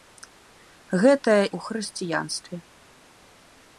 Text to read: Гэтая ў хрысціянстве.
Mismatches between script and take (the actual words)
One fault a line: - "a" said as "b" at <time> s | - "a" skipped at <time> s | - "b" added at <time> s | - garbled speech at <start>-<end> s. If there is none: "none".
none